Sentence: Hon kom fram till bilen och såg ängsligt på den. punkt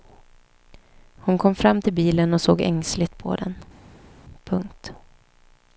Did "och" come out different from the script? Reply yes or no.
no